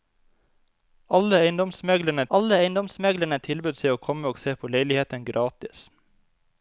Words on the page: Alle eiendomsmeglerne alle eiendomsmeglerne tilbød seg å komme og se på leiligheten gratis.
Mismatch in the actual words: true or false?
false